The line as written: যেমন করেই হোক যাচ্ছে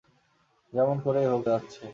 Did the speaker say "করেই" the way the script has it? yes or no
yes